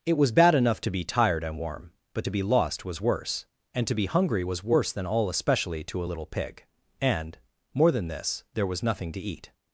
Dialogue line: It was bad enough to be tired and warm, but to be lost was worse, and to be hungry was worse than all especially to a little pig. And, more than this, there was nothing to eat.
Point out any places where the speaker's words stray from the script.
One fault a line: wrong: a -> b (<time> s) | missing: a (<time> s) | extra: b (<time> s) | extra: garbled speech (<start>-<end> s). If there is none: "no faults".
no faults